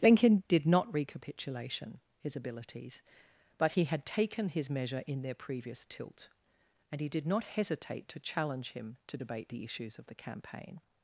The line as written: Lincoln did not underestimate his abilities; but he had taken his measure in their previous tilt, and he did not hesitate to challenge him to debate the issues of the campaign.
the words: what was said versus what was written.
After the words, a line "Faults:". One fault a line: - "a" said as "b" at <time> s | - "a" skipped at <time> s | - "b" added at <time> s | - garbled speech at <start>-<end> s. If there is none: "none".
Lincoln did not recapitulation his abilities; but he had taken his measure in their previous tilt, and he did not hesitate to challenge him to debate the issues of the campaign.
Faults:
- "underestimate" said as "recapitulation" at 0.9 s